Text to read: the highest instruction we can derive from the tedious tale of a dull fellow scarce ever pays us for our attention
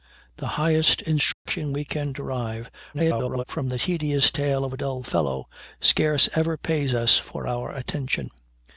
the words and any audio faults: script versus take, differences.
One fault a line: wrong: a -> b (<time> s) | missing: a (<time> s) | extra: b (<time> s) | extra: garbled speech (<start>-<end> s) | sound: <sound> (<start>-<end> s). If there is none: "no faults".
sound: dropout (1.3-1.5 s)
extra: garbled speech (2.9-3.4 s)